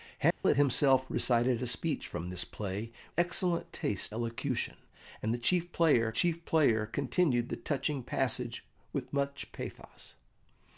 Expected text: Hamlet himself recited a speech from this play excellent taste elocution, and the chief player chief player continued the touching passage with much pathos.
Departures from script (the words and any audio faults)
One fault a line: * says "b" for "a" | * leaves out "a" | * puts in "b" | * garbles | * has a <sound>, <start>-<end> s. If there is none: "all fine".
* has a dropout, 0.3-0.4 s